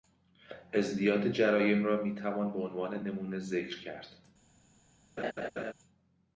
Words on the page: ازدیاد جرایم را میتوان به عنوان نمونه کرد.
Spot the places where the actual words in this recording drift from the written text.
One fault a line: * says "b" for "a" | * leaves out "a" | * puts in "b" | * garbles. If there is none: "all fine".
* puts in "ذکر"